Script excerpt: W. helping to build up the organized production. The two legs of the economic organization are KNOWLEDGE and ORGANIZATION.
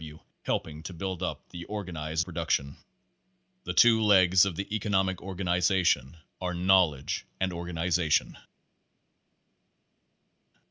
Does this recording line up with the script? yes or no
yes